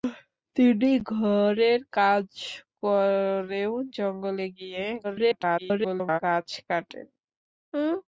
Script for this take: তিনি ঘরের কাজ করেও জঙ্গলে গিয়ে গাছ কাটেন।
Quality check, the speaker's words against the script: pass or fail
fail